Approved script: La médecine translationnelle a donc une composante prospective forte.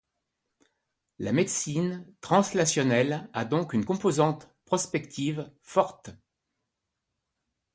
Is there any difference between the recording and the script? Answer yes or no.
no